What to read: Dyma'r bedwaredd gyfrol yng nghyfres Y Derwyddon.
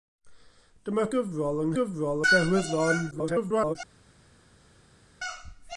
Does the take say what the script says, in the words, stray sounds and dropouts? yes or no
no